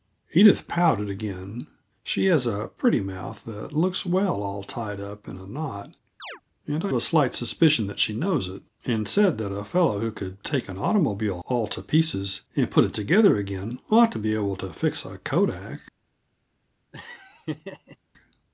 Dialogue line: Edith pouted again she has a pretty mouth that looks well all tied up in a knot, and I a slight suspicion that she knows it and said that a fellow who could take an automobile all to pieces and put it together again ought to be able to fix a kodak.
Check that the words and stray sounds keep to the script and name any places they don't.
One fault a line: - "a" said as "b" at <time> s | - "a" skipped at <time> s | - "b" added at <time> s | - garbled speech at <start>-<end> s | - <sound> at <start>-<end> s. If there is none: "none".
- chirp at 6.2-6.4 s
- laugh at 16.9-18.0 s